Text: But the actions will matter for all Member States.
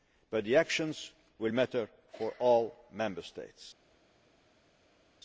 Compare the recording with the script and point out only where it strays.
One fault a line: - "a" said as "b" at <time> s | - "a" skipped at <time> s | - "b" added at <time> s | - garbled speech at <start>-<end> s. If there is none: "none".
none